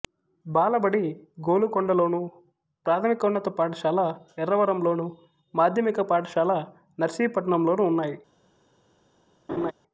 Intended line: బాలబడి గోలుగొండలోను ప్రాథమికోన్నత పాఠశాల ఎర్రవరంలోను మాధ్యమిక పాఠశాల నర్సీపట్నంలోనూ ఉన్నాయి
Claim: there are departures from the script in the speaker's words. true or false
false